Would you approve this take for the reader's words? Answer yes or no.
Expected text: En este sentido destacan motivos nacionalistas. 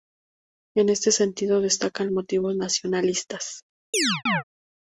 yes